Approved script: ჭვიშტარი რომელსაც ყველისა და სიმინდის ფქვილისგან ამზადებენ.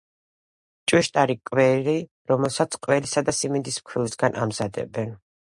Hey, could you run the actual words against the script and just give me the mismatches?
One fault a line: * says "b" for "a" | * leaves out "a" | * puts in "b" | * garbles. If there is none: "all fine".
* puts in "კვერი"